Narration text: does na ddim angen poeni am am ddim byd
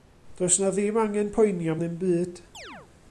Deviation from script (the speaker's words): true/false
true